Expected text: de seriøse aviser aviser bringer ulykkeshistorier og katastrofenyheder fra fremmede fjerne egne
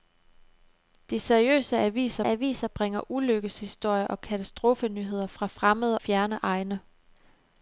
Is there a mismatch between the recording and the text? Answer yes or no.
no